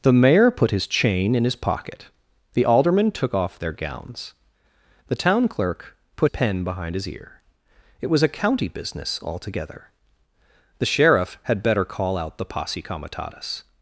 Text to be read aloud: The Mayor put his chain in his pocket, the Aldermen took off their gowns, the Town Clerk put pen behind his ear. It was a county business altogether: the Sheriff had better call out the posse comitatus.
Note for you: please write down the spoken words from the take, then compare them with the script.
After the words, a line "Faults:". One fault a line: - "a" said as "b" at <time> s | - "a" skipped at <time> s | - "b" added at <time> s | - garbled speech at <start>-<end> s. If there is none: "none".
The Mayor put his chain in his pocket, the Aldermen took off their gowns, the Town Clerk put pen behind his ear. It was a county business altogether: the Sheriff had better call out the posse comitatus.
Faults:
none